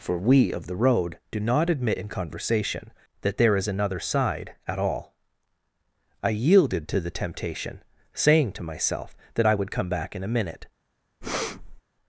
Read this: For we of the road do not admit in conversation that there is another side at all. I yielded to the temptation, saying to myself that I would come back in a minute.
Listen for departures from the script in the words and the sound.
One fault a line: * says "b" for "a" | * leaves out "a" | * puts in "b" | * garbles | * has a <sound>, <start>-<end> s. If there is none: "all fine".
* has a breath, 11.2-11.8 s